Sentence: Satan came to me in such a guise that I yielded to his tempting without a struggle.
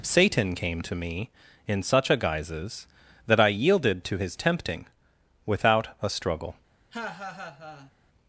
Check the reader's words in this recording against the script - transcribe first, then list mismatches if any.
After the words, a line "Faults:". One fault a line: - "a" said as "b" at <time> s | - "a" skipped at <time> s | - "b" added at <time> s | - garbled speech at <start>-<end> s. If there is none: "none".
Satan came to me in such a guises that I yielded to his tempting without a struggle.
Faults:
- "guise" said as "guises" at 2.2 s